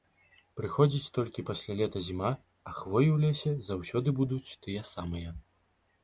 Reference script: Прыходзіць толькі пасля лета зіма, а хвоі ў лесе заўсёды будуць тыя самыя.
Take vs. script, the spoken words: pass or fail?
pass